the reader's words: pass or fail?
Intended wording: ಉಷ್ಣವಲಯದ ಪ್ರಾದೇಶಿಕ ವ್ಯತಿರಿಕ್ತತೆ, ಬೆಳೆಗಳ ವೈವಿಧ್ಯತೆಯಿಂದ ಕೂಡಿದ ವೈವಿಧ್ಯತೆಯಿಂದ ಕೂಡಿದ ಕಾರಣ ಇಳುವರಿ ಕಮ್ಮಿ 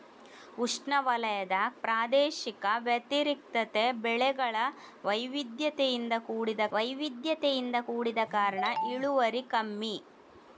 pass